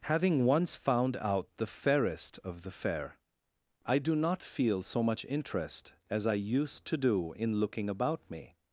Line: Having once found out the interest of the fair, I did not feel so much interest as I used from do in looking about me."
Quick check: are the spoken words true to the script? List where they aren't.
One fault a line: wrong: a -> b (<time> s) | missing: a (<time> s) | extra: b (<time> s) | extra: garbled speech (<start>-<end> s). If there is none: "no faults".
wrong: interest -> fairest (1.7 s)
wrong: did -> do (4.0 s)
wrong: from -> to (6.8 s)